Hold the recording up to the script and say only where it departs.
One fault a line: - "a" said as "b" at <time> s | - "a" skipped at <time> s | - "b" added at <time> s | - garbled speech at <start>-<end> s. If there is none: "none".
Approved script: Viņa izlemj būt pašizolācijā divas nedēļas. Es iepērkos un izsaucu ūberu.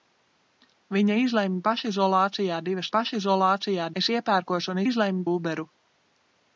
- "būt" skipped at 1.6 s
- "nedēļas" said as "pašizolācijā" at 3.0 s
- "izsaucu" said as "izlemj" at 4.9 s